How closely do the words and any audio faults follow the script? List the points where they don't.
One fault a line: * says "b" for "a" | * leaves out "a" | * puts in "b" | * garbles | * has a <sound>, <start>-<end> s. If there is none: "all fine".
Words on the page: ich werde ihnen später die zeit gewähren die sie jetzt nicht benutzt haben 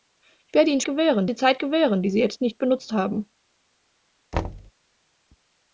* says "gewähren" for "später"
* has a thud, 4.3-4.7 s